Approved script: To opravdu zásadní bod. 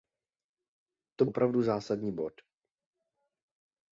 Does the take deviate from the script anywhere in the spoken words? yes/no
no